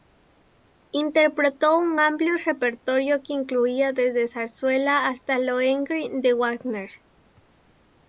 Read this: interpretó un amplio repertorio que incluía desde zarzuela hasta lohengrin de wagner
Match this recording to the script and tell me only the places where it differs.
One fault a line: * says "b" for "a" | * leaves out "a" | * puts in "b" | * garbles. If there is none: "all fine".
all fine